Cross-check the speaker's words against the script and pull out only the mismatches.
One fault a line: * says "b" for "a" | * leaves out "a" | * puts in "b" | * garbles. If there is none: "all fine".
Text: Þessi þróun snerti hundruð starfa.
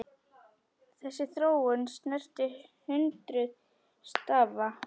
all fine